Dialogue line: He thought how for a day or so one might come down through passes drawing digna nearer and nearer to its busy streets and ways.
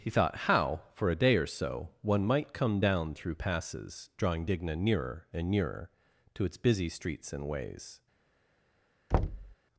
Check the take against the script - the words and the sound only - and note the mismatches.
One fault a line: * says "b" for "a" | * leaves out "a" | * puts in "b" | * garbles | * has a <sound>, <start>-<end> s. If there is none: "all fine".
* has a thud, 9.1-9.6 s